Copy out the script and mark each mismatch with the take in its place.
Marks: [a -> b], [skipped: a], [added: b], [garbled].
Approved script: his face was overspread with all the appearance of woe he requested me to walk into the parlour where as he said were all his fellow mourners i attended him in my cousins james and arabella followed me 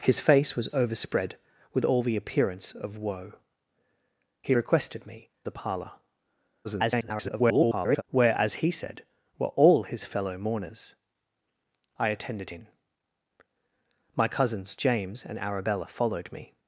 his face was overspread with all the appearance of woe he requested me [skipped: to walk into] the parlour [garbled] where as he said were all his fellow mourners i attended [skipped: him] in my cousins james and arabella followed me